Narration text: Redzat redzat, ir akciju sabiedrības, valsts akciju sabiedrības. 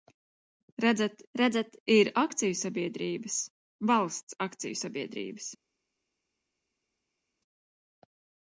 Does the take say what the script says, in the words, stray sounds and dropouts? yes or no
yes